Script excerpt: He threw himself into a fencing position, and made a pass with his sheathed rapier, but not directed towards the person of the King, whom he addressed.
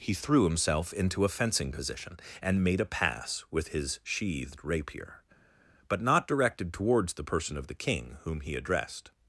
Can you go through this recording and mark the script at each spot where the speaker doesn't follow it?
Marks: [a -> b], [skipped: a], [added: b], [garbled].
He threw himself into a fencing position, and made a pass with his sheathed rapier, but not directed towards the person of the King, whom he addressed.